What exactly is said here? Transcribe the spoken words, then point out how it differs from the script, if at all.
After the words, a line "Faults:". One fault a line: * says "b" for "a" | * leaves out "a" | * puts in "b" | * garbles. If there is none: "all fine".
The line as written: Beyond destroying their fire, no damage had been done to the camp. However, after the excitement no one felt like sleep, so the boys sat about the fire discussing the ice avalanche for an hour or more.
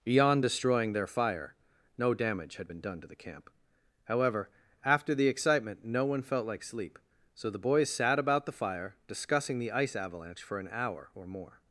Beyond destroying their fire, no damage had been done to the camp. However, after the excitement no one felt like sleep, so the boys sat about the fire discussing the ice avalanche for an hour or more.
Faults:
all fine